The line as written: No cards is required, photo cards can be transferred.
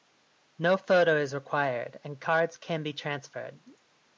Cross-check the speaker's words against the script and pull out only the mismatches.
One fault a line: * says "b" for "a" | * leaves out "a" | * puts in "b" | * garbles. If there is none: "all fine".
* says "photo" for "cards"
* says "and" for "photo"